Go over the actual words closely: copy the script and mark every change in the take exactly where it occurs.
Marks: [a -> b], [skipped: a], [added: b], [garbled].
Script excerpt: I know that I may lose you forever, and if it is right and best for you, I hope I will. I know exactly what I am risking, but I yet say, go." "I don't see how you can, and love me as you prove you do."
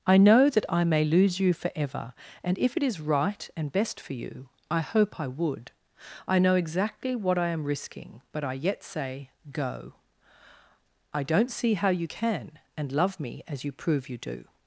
I know that I may lose you forever, and if it is right and best for you, I hope I [will. -> would] I know exactly what I am risking, but I yet say, go." "I don't see how you can, and love me as you prove you do."